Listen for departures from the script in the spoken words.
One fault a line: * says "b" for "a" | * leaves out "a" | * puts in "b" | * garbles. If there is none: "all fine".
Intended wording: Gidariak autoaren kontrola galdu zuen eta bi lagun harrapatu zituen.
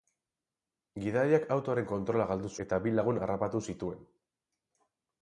* leaves out "zuen"